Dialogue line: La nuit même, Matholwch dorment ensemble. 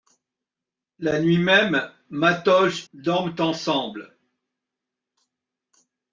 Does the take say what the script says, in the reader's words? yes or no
yes